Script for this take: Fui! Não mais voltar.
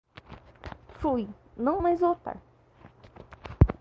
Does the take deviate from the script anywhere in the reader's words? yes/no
no